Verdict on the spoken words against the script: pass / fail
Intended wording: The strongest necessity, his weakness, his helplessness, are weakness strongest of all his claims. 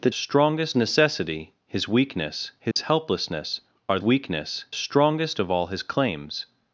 pass